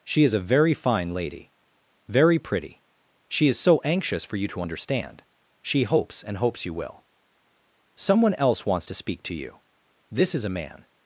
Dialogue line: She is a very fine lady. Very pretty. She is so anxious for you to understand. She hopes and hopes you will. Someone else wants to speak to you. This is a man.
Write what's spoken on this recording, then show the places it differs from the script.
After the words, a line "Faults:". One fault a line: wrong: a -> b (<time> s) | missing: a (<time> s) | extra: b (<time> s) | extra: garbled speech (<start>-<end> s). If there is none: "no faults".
She is a very fine lady. Very pretty. She is so anxious for you to understand. She hopes and hopes you will. Someone else wants to speak to you. This is a man.
Faults:
no faults